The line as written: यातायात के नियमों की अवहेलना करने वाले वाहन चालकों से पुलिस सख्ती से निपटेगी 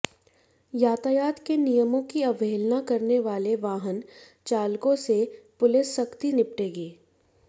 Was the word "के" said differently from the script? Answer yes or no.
no